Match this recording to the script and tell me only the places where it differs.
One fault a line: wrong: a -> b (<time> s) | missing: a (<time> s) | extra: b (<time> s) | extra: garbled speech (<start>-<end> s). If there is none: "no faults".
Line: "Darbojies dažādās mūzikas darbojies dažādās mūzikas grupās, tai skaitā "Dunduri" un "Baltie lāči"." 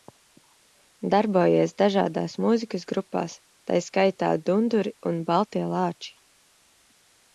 missing: darbojies dažādās mūzikas (2.9 s)